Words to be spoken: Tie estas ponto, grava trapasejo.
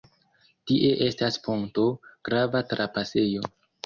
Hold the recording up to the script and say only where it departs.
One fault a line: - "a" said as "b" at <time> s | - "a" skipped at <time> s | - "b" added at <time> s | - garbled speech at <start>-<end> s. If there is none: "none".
none